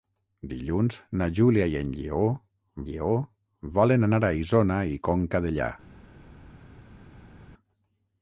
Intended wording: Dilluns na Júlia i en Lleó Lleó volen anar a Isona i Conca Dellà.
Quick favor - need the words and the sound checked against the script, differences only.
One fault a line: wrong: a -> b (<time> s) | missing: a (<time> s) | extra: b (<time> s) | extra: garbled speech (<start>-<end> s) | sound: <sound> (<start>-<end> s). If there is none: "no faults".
no faults